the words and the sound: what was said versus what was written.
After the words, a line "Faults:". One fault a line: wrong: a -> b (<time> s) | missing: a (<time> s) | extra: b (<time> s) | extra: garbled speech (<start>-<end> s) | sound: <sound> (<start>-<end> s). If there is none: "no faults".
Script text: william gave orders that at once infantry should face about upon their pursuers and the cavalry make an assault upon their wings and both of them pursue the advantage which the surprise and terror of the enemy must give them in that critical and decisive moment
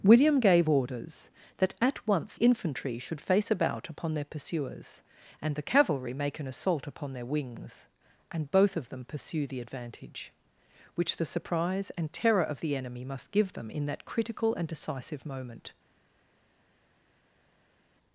william gave orders that at once infantry should face about upon their pursuers and the cavalry make an assault upon their wings and both of them pursue the advantage which the surprise and terror of the enemy must give them in that critical and decisive moment
Faults:
no faults